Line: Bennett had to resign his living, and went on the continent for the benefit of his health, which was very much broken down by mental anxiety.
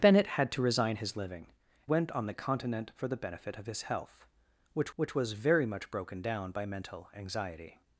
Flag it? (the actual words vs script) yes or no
yes